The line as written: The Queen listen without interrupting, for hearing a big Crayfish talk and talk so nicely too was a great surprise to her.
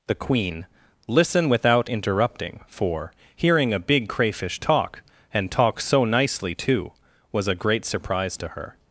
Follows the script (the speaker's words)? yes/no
yes